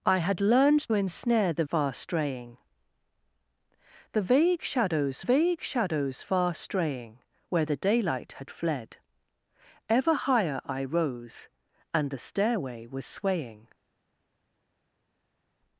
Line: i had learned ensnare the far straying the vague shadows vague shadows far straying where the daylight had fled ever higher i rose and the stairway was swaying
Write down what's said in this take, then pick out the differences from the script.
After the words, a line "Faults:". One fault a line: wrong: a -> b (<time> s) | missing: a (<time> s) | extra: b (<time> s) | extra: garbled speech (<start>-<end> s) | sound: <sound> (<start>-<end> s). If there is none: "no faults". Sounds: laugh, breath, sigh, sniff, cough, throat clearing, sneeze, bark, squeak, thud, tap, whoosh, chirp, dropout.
i had learned ensnare the far straying the vague shadows vague shadows far straying where the daylight had fled ever higher i rose and the stairway was swaying
Faults:
no faults